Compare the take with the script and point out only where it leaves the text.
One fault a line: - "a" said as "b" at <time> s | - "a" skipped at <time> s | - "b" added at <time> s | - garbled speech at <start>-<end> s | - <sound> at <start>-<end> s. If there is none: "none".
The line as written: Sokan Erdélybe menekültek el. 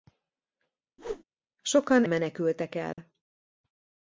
- whoosh at 1.0-1.2 s
- "Erdélybe" skipped at 2.1 s
- dropout at 2.9-3.0 s